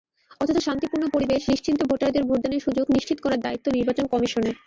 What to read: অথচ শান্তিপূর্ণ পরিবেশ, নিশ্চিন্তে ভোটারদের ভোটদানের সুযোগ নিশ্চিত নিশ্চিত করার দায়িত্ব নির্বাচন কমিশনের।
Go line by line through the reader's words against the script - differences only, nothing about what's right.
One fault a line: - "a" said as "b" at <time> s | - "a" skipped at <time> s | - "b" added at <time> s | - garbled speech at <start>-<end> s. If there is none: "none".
- "নিশ্চিত" skipped at 3.2 s